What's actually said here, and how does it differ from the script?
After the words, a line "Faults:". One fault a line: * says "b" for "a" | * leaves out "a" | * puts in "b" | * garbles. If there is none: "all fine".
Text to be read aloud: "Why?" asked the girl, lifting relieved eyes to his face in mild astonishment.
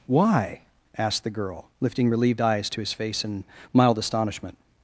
"Why?" asked the girl, lifting relieved eyes to his face in mild astonishment.
Faults:
all fine